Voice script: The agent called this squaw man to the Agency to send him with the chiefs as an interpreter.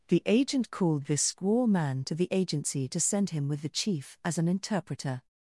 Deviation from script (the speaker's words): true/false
true